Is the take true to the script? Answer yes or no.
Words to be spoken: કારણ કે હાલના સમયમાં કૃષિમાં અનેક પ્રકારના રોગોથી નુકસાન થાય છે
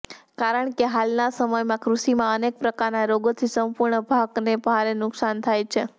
no